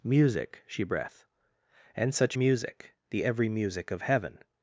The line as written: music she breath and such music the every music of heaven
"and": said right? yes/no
yes